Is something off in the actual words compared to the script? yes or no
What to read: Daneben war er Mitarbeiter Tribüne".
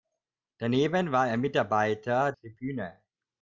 no